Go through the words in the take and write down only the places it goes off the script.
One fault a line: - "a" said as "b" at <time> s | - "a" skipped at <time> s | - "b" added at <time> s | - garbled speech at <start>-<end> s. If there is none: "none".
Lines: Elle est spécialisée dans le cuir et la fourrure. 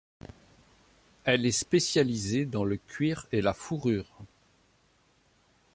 none